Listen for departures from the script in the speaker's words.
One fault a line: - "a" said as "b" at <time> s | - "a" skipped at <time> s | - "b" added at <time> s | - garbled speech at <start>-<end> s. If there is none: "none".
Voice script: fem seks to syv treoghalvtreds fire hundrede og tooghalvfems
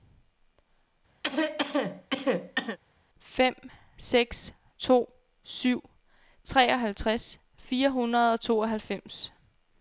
none